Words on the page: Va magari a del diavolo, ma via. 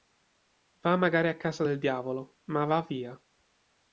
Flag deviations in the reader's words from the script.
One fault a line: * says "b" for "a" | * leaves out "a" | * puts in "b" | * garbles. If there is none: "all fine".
* puts in "casa"
* puts in "va"